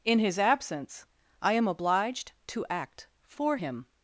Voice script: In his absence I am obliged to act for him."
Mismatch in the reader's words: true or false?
false